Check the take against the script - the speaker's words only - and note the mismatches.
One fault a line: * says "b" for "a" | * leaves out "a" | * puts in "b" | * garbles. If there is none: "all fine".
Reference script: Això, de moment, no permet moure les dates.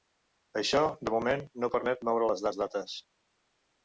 * puts in "les"